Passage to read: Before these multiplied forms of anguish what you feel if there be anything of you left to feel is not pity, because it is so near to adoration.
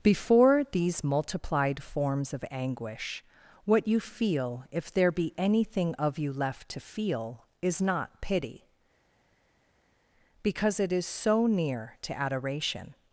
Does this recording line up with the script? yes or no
yes